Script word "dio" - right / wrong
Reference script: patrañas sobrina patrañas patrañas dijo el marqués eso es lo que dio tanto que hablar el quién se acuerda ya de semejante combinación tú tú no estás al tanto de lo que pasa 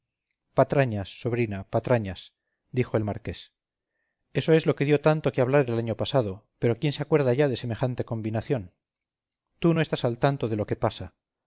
right